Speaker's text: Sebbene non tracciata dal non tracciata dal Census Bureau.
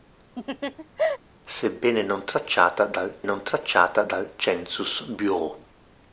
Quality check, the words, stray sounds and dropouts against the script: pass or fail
fail